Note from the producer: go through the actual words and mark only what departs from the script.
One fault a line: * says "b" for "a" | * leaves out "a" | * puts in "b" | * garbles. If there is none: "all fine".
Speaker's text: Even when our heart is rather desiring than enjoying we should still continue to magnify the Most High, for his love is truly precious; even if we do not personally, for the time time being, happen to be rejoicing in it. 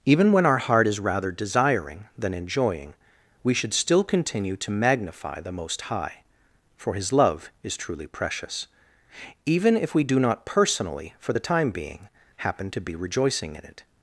* leaves out "time"